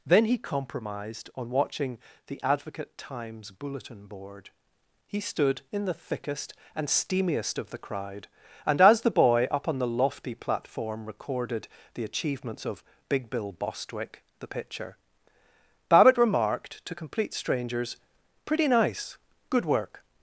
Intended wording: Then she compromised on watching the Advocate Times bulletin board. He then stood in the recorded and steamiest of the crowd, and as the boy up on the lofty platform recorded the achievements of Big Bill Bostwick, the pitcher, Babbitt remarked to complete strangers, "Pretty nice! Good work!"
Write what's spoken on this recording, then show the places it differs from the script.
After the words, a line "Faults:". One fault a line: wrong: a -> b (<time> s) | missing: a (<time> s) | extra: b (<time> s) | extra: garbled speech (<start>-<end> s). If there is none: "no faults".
Then he compromised on watching the Advocate Times bulletin board. He stood in the thickest and steamiest of the crowd, and as the boy up on the lofty platform recorded the achievements of Big Bill Bostwick, the pitcher, Babbitt remarked to complete strangers, "Pretty nice! Good work!"
Faults:
wrong: she -> he (0.2 s)
missing: then (5.2 s)
wrong: recorded -> thickest (5.9 s)